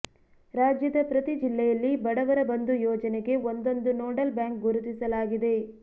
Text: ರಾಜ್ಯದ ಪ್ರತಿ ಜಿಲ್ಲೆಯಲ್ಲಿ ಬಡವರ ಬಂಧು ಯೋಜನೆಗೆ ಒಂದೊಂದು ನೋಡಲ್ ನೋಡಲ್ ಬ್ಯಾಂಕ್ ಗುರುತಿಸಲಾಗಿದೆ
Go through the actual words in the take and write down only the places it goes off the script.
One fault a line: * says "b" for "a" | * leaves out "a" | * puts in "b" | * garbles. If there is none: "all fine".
* leaves out "ನೋಡಲ್"